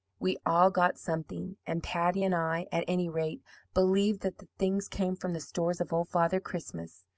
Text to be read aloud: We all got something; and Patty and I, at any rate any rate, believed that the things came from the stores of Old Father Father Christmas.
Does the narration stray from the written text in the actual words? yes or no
yes